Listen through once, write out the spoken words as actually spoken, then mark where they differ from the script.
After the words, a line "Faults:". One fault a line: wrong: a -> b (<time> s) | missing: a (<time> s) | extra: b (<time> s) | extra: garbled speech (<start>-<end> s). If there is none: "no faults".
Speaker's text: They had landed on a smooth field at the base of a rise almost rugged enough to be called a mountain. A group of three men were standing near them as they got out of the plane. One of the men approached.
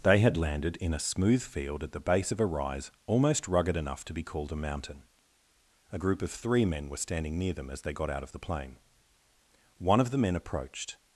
They had landed in a smooth field at the base of a rise almost rugged enough to be called a mountain. A group of three men were standing near them as they got out of the plane. One of the men approached.
Faults:
wrong: on -> in (0.8 s)